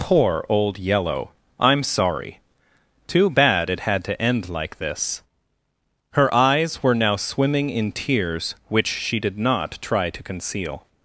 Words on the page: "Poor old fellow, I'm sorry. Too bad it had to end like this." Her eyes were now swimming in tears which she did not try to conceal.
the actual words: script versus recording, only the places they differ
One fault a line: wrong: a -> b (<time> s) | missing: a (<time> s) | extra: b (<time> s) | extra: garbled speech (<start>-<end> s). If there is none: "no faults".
wrong: fellow -> yellow (0.8 s)